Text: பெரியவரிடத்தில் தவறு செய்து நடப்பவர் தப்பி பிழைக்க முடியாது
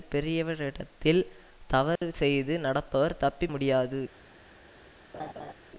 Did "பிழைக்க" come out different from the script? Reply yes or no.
yes